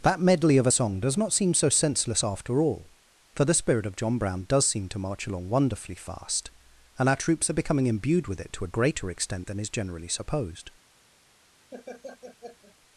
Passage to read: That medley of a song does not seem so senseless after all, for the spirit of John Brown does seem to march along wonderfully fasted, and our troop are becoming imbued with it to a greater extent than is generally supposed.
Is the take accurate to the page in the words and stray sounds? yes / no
no